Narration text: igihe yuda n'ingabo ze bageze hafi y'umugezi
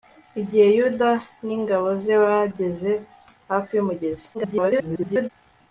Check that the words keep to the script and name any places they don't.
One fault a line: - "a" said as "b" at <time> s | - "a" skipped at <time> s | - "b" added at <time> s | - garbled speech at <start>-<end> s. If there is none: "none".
- garbled speech at 4.3-5.3 s